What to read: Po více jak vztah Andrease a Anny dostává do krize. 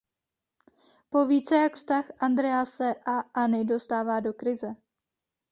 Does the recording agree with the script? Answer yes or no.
yes